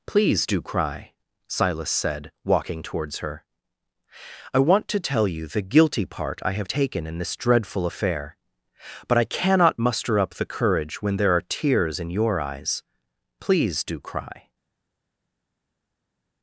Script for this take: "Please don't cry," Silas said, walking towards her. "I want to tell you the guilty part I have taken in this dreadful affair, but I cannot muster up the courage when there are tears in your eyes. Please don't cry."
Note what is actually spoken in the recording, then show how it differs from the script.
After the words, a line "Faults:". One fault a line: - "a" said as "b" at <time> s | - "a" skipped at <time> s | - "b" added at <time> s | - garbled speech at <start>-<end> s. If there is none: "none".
"Please do cry," Silas said, walking towards her. "I want to tell you the guilty part I have taken in this dreadful affair, but I cannot muster up the courage when there are tears in your eyes. Please do cry."
Faults:
- "don't" said as "do" at 0.5 s
- "don't" said as "do" at 13.8 s